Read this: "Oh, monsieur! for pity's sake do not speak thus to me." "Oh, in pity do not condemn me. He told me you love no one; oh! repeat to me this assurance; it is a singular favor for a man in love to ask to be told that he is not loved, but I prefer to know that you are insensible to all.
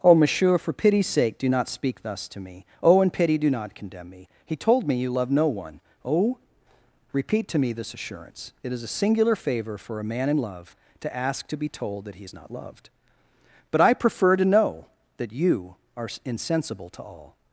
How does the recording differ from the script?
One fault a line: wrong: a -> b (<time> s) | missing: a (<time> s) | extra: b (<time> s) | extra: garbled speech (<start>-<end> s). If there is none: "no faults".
no faults